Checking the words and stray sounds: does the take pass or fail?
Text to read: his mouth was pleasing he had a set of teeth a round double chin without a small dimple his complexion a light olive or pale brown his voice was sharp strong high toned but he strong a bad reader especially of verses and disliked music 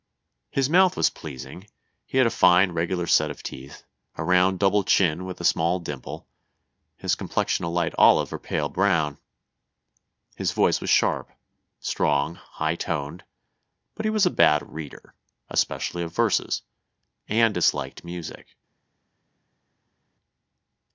fail